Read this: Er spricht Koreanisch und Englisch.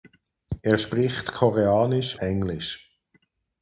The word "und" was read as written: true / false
false